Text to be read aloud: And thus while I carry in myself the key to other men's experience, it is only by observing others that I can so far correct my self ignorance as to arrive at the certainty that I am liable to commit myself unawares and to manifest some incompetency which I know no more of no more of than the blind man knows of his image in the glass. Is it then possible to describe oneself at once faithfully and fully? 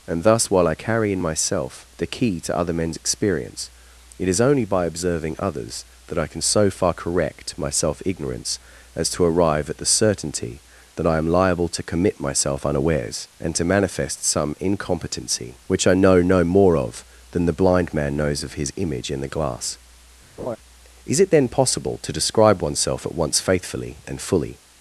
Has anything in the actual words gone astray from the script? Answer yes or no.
yes